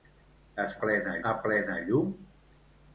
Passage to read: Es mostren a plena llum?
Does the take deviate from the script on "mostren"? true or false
true